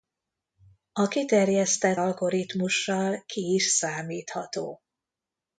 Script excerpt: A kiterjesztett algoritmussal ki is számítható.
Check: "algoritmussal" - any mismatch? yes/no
no